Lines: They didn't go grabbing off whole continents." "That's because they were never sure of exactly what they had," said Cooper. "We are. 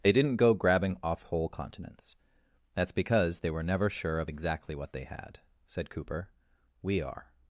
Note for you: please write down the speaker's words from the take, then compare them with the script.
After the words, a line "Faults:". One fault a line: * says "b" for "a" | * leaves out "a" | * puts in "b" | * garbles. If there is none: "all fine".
They didn't go grabbing off whole continents." "That's because they were never sure of exactly what they had," said Cooper. "We are.
Faults:
all fine